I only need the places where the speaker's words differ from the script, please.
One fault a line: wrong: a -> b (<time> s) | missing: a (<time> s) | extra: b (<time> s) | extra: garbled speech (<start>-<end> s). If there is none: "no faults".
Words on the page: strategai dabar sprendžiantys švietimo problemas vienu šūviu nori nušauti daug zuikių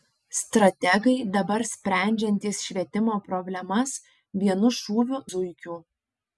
missing: nori nušauti daug (5.2 s)